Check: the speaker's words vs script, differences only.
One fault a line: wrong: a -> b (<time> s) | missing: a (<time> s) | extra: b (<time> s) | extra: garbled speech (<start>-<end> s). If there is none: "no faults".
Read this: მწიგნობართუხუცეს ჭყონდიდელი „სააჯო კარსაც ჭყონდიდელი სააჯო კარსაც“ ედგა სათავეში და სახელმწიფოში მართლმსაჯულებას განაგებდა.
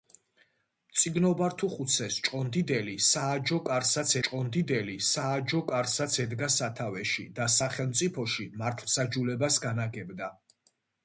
no faults